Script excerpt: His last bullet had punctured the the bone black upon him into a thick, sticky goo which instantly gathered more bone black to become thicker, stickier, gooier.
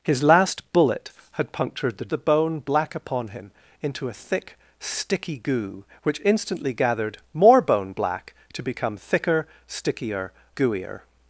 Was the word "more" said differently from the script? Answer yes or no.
no